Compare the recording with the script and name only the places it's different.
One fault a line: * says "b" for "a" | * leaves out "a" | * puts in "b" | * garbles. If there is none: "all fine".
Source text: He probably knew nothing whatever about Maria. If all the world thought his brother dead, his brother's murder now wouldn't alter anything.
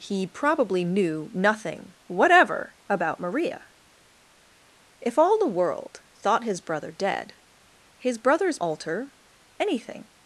* leaves out "murder now wouldn't"